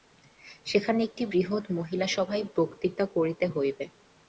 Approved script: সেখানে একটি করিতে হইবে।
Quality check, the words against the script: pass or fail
fail